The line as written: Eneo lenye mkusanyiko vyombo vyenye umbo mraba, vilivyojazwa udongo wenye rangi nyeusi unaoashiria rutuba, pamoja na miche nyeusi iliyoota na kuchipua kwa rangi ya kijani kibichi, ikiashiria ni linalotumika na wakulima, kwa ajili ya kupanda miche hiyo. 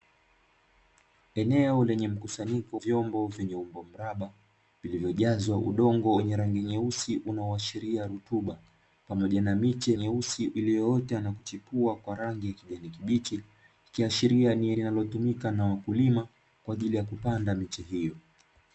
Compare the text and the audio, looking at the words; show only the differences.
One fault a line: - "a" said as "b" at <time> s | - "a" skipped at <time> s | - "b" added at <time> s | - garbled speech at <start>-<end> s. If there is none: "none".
none